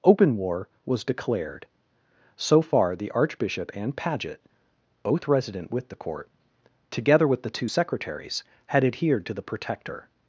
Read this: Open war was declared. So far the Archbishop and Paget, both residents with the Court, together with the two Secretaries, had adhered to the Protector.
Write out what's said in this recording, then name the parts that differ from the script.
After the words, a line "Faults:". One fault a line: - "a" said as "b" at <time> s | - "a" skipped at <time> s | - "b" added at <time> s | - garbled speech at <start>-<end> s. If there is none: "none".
Open war was declared. So far the Archbishop and Paget, both resident with the Court, together with the two Secretaries, had adhered to the Protector.
Faults:
- "residents" said as "resident" at 5.3 s